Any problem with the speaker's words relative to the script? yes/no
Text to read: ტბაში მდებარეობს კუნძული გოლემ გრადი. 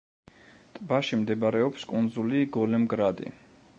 no